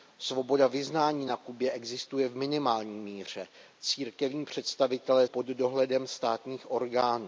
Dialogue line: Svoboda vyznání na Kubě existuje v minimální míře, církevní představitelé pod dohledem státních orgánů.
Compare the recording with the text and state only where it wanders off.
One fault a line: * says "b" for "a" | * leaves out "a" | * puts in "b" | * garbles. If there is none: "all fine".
all fine